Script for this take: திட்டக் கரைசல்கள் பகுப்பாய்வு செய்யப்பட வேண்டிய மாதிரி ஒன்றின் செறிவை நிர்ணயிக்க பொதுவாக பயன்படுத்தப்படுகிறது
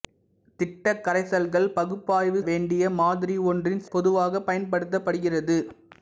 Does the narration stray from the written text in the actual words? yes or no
yes